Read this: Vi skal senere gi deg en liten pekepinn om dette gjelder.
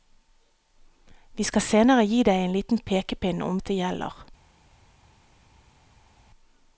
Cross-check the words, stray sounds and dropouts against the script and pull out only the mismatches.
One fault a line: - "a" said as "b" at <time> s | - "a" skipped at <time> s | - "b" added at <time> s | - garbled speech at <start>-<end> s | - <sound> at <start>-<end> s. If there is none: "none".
none